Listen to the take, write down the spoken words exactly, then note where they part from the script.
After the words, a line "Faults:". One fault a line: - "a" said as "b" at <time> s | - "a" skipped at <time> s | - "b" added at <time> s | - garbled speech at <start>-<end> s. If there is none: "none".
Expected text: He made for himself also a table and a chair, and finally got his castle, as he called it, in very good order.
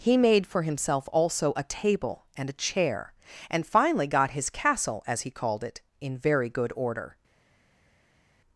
He made for himself also a table and a chair, and finally got his castle, as he called it, in very good order.
Faults:
none